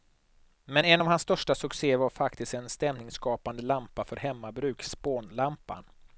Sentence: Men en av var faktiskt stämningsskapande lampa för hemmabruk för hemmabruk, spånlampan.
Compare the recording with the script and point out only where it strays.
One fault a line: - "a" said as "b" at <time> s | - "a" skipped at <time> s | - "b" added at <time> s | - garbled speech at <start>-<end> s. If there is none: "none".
- "hans största succéer" added at 1.1 s
- "en" added at 2.5 s
- "för hemmabruk" skipped at 4.8 s